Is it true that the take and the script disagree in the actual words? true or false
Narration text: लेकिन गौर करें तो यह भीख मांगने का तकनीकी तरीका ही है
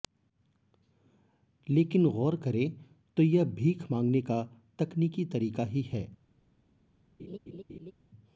false